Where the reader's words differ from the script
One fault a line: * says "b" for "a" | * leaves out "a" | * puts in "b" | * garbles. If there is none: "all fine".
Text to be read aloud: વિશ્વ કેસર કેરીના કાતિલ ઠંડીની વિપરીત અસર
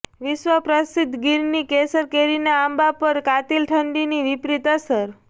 * puts in "પ્રસિદ્ધ ગીરની"
* puts in "આંબા પર"